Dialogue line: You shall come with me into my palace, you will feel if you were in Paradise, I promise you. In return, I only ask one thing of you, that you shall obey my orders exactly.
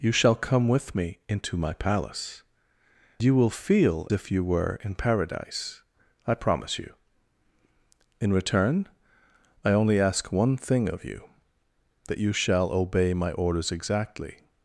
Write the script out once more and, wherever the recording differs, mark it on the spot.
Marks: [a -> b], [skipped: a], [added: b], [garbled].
You shall come with me into my palace, you will feel if you were in Paradise, I promise you. In return, I only ask one thing of you, that you shall obey my orders exactly.